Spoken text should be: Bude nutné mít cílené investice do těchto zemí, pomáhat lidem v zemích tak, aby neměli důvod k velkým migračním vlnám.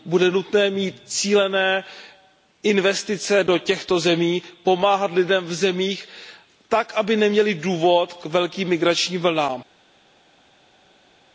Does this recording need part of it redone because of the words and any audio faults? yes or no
no